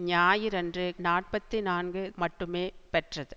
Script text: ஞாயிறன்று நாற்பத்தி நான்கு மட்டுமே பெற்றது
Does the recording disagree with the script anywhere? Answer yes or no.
no